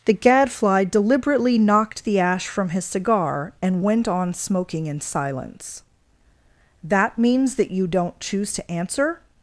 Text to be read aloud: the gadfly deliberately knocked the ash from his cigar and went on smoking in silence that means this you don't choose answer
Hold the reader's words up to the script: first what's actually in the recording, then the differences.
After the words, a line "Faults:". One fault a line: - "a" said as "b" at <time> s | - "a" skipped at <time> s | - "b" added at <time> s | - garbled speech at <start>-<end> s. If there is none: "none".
the gadfly deliberately knocked the ash from his cigar and went on smoking in silence that means that you don't choose to answer
Faults:
- "this" said as "that" at 7.6 s
- "to" added at 8.5 s